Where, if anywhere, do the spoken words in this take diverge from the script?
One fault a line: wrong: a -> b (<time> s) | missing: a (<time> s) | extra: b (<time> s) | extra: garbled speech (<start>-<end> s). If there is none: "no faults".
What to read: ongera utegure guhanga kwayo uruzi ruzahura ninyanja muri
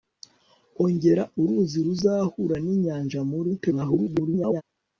missing: utegure guhanga kwayo (1.2 s)
extra: garbled speech (3.6-4.6 s)